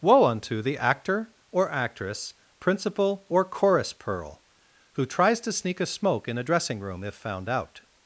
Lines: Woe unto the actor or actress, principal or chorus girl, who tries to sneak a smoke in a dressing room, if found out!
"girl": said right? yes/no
no